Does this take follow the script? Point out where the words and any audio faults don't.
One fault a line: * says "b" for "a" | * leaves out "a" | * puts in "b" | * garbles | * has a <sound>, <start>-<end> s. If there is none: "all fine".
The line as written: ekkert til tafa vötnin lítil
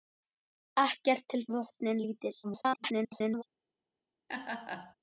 * leaves out "tafa"
* garbles
* has a laugh, 4.3-4.9 s